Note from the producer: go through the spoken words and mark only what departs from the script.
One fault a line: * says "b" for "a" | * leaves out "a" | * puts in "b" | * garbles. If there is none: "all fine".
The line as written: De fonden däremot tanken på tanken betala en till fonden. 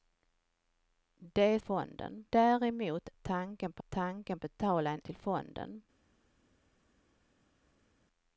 all fine